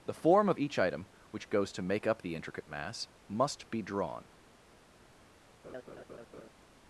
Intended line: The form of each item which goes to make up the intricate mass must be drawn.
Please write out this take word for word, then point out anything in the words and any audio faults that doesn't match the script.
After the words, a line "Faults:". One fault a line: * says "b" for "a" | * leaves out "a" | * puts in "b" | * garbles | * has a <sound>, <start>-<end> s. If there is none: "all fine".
The form of each item which goes to make up the intricate mass must be drawn.
Faults:
* has a laugh, 5.6-6.5 s